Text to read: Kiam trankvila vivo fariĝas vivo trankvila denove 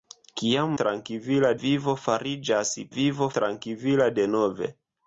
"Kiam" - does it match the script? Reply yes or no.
yes